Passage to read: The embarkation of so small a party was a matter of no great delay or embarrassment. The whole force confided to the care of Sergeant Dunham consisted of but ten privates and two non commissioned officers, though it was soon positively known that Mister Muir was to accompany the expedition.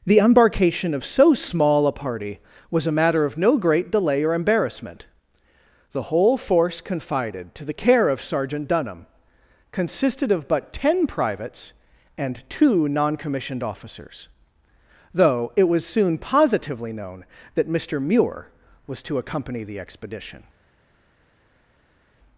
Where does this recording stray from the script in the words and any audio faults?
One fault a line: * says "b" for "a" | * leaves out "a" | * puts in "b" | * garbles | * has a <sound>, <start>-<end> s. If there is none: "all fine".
all fine